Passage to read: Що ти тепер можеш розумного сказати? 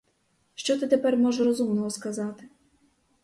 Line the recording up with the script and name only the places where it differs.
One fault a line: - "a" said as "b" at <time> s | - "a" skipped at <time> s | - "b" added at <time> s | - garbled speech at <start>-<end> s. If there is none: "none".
none